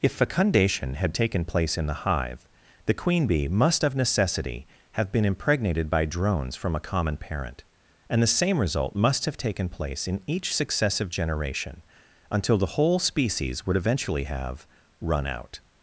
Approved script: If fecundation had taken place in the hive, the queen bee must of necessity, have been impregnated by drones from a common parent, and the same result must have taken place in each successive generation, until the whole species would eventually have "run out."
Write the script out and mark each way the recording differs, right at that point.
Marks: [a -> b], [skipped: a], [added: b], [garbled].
If fecundation had taken place in the hive, the queen bee must of necessity, have been impregnated by drones from a common parent, and the same result must have taken place in each successive generation, until the whole species would eventually have "run out."